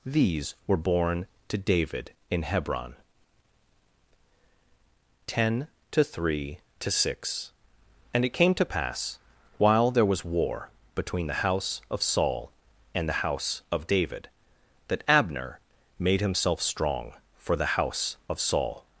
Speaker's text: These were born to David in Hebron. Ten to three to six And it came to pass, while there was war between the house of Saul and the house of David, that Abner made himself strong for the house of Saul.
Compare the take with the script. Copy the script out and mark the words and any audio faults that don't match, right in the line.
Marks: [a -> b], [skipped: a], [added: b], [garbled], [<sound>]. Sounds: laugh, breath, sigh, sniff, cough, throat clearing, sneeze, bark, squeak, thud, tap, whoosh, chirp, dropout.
These were born to David in Hebron. Ten to three to six And it came to pass, while there was war between the house of Saul and the house of David, that Abner made himself strong for the house of Saul.